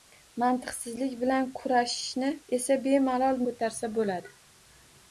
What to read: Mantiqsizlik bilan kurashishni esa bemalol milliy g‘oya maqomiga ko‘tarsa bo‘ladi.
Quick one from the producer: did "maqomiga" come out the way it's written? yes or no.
no